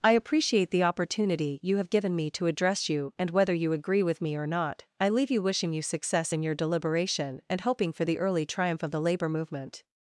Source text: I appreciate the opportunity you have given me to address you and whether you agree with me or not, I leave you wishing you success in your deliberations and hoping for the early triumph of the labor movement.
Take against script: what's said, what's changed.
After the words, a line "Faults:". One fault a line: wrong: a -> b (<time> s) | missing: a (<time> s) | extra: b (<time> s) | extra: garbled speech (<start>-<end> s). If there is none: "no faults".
I appreciate the opportunity you have given me to address you and whether you agree with me or not, I leave you wishing you success in your deliberation and hoping for the early triumph of the labor movement.
Faults:
wrong: deliberations -> deliberation (6.5 s)